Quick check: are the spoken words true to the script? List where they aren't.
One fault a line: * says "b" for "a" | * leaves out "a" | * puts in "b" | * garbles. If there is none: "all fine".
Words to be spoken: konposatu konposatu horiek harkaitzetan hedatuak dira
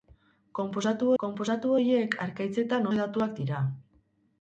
all fine